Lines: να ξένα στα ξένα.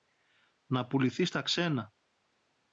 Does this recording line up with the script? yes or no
no